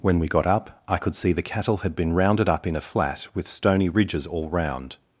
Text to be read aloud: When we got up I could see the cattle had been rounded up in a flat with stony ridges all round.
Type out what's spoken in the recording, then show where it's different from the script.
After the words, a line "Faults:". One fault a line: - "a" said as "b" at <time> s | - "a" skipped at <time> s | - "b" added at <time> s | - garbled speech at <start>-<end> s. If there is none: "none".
When we got up I could see the cattle had been rounded up in a flat with stony ridges all round.
Faults:
none